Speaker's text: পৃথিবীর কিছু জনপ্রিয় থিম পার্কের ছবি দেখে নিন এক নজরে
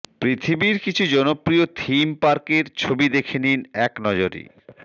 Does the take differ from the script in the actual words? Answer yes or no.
no